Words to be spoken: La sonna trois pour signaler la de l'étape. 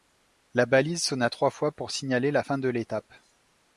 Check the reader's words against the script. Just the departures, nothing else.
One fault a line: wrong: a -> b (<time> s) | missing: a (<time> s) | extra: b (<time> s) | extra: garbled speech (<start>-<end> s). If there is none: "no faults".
extra: balise (0.7 s)
extra: fois (1.5 s)
extra: fin (2.4 s)